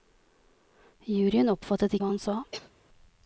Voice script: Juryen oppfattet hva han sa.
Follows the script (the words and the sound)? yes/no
no